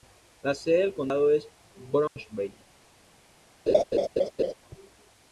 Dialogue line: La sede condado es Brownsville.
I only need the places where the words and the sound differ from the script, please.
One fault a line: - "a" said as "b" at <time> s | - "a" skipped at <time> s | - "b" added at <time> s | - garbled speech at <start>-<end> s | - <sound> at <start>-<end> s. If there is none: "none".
- "del" added at 0.8 s
- dropout at 2.1-2.2 s
- laugh at 3.7-4.5 s